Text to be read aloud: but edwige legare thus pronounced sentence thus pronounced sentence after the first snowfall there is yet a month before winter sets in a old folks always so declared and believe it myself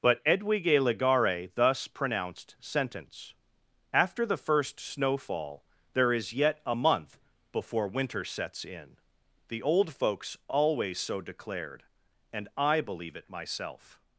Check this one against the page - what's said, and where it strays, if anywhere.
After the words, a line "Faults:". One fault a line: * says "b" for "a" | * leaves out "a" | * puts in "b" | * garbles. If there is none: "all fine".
but edwige legare thus pronounced sentence after the first snowfall there is yet a month before winter sets in the old folks always so declared and i believe it myself
Faults:
* leaves out "thus pronounced sentence"
* says "the" for "a"
* puts in "i"